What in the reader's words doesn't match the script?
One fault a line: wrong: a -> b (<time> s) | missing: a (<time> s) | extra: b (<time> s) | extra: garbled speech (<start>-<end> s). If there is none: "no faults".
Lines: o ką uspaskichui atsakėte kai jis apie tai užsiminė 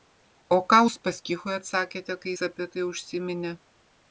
no faults